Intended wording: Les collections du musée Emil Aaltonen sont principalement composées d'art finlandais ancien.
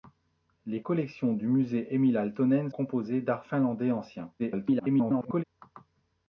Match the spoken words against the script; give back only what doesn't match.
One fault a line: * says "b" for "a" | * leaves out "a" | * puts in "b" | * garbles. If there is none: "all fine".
* leaves out "sont principalement"
* garbles